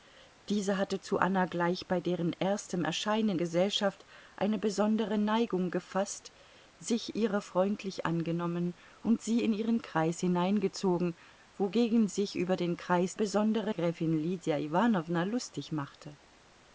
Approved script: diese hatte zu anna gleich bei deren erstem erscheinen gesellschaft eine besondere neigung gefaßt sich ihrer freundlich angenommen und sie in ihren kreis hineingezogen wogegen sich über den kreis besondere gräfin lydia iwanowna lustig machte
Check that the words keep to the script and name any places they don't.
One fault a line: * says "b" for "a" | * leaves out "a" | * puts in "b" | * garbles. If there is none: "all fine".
all fine